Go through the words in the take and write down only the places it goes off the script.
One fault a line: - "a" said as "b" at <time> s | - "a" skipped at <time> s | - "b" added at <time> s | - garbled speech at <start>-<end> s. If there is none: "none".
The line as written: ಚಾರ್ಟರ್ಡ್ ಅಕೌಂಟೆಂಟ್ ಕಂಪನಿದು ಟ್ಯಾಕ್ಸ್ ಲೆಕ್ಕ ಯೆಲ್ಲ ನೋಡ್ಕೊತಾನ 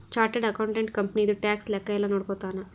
none